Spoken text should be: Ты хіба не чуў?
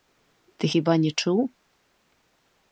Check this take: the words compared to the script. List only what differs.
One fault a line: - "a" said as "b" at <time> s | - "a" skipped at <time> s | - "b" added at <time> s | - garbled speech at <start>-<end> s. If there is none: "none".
none